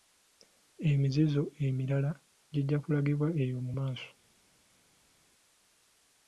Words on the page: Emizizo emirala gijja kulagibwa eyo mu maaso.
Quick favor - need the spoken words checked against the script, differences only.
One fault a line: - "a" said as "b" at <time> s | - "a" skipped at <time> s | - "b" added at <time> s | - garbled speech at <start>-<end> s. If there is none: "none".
none